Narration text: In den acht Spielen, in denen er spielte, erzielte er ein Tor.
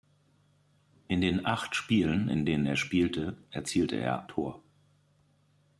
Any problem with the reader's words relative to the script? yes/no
yes